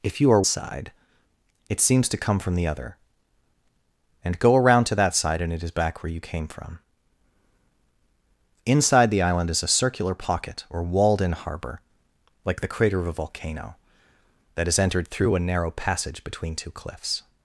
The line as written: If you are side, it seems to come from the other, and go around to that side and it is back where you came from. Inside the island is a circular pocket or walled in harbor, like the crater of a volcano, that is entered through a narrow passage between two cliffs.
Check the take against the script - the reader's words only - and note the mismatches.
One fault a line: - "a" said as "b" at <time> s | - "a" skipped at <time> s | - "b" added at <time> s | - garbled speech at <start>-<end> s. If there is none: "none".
none